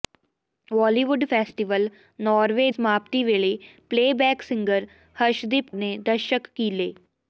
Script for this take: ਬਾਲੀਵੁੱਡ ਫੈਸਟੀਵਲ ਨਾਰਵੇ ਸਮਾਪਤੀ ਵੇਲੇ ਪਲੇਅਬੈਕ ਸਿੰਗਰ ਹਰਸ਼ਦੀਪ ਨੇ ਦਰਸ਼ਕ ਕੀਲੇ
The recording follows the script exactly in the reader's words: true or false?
true